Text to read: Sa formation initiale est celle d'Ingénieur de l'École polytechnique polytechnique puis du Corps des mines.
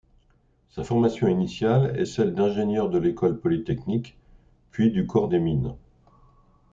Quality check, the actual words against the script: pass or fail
fail